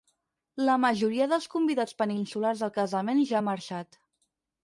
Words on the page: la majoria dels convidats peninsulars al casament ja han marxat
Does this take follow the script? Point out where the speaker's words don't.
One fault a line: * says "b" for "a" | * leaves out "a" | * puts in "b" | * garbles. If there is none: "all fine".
all fine